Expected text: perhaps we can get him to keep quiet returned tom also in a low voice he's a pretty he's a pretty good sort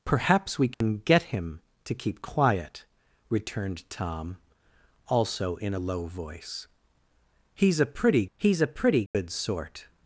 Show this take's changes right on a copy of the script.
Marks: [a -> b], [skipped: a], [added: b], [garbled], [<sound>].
perhaps we can [dropout] get him to keep quiet returned tom also in a low voice he's a pretty he's a pretty good [dropout] sort